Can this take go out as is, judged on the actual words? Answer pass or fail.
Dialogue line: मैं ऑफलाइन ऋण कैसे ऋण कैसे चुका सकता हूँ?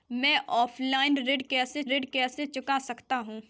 pass